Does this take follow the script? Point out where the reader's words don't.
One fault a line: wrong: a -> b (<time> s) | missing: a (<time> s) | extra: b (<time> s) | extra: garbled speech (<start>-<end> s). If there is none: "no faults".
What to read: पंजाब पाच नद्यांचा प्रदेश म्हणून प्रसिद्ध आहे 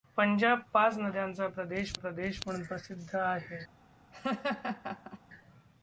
extra: प्रदेश (1.9 s)